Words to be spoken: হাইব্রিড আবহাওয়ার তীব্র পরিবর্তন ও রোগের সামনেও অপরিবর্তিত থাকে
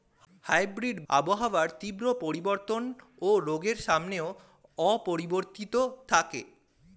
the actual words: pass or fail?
pass